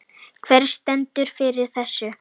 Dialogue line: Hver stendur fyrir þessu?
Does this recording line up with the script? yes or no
yes